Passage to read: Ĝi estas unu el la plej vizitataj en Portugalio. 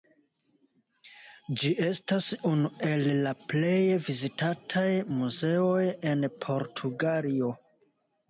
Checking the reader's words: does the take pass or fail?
fail